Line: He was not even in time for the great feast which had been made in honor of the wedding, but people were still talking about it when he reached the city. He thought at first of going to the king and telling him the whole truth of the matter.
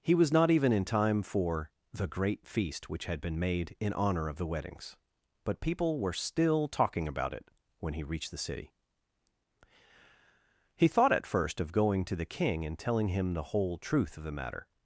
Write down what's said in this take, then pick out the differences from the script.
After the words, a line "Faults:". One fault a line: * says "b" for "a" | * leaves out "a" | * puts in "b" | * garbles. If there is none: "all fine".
He was not even in time for the great feast which had been made in honor of the weddings, but people were still talking about it when he reached the city. He thought at first of going to the king and telling him the whole truth of the matter.
Faults:
* says "weddings" for "wedding"